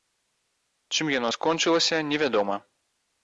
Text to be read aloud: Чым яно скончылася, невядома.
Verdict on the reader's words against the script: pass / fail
pass